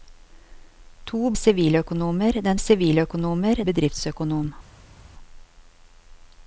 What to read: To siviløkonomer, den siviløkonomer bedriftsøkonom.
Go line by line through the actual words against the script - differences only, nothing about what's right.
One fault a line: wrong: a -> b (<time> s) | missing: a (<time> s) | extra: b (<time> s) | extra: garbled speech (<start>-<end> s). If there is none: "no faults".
no faults